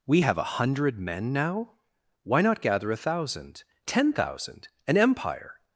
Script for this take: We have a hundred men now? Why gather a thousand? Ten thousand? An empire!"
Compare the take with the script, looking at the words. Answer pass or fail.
fail